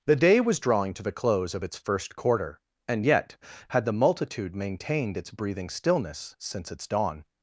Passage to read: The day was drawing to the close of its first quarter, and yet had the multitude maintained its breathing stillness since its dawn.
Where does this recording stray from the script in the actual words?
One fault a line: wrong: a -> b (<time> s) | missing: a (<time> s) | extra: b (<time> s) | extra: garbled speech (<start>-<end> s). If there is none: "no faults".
no faults